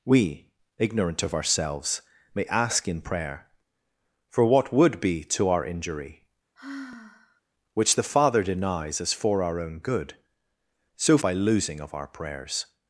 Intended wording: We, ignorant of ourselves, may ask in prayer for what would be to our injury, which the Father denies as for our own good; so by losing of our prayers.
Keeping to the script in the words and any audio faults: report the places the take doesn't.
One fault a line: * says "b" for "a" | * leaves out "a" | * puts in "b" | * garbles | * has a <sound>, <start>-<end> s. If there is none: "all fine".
* has a sigh, 6.6-7.4 s